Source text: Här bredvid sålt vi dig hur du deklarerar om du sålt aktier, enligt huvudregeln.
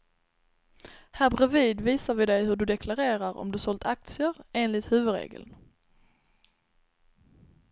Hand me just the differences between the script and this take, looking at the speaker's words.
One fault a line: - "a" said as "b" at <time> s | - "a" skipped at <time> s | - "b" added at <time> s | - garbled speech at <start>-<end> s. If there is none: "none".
- "sålt" said as "visar" at 1.8 s